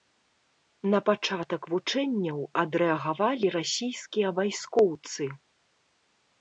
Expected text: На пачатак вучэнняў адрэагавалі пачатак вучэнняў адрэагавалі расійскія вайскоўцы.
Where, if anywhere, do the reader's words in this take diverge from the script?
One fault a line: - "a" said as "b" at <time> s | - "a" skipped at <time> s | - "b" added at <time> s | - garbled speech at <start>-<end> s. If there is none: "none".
- "пачатак вучэнняў адрэагавалі" skipped at 3.5 s